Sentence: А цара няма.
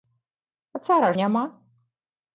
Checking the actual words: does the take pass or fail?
pass